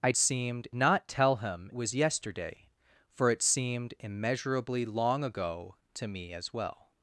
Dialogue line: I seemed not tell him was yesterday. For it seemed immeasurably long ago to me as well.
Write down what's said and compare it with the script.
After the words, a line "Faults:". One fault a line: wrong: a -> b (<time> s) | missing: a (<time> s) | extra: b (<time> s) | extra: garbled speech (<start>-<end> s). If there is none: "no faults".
I seemed not tell him was yesterday. For it seemed immeasurably long ago to me as well.
Faults:
no faults